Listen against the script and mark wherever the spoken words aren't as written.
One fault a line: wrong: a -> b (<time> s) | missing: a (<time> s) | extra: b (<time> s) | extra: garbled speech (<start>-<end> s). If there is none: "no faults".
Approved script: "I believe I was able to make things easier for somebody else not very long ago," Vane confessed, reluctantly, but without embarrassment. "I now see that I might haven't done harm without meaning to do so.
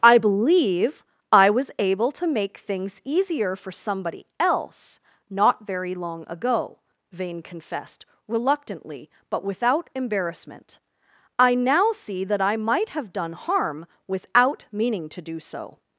wrong: haven't -> have (12.9 s)